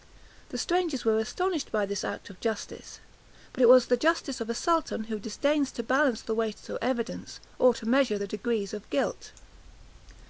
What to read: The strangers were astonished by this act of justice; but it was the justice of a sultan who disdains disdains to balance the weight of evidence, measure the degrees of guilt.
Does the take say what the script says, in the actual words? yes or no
no